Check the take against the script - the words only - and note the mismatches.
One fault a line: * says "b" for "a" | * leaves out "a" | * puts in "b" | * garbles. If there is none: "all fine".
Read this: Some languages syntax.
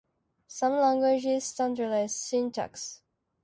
* puts in "standardize"